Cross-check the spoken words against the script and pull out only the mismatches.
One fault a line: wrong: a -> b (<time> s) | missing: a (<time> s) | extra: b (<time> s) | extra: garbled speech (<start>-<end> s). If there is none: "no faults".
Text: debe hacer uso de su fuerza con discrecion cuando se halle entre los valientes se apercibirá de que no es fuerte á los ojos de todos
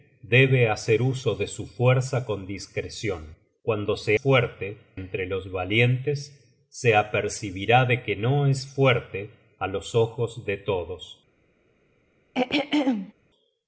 wrong: halle -> fuerte (4.1 s)